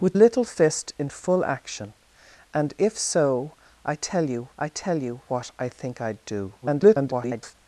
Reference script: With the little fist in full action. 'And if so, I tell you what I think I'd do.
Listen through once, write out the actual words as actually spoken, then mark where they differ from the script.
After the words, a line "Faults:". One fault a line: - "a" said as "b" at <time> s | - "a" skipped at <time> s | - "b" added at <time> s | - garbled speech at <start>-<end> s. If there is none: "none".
With little fist in full action. 'And if so, I tell you I tell you what I think I'd do. [garbled]
Faults:
- "the" skipped at 0.1 s
- "I tell you" added at 4.6 s
- garbled speech at 6.6-7.5 s